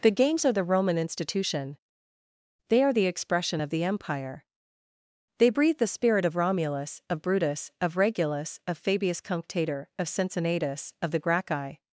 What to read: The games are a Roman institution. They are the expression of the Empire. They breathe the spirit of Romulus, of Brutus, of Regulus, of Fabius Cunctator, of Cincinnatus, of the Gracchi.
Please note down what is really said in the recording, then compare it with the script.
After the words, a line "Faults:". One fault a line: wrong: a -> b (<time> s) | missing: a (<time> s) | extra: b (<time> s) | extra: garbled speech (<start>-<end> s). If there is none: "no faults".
The games are the Roman institution. They are the expression of the Empire. They breathe the spirit of Romulus, of Brutus, of Regulus, of Fabius Cunctator, of Cincinnatus, of the Gracchi.
Faults:
wrong: a -> the (0.5 s)